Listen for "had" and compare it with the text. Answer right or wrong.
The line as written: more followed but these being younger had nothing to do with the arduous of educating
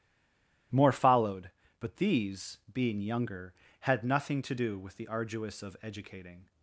right